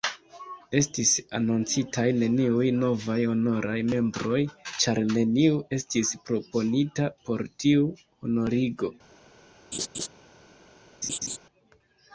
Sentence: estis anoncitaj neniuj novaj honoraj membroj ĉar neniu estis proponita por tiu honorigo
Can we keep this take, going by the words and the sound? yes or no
no